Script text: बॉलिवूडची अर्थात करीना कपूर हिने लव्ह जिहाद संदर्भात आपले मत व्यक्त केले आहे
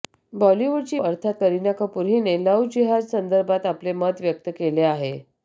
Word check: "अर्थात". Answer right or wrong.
right